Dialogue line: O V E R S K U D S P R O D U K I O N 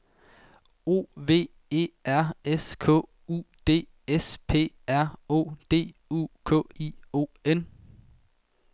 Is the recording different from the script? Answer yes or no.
no